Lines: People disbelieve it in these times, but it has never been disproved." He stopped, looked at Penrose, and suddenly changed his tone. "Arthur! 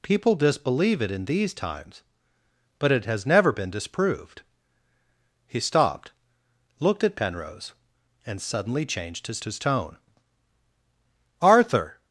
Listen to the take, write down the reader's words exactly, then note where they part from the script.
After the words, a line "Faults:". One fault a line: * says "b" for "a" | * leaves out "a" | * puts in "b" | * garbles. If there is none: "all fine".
People disbelieve it in these times, but it has never been disproved." He stopped, looked at Penrose, and suddenly changed his his tone. "Arthur!
Faults:
* puts in "his"